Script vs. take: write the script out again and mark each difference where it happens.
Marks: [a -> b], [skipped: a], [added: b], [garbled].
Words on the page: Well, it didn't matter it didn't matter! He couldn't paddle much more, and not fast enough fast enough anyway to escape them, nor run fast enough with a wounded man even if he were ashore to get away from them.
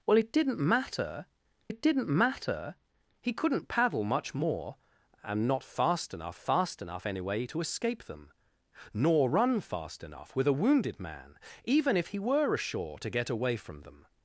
Well, it didn't matter it didn't matter! He couldn't paddle much more, and not fast enough fast enough anyway to escape them, nor run fast enough with a wounded man even if he were ashore to get away from them.